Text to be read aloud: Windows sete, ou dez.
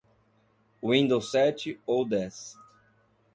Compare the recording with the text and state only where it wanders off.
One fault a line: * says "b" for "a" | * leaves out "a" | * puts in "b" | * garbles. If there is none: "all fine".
all fine